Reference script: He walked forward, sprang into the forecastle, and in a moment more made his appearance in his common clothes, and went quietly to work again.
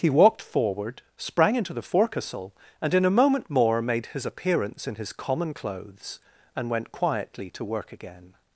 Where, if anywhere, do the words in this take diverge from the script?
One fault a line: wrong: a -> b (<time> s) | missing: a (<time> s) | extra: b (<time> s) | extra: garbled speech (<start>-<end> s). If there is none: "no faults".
no faults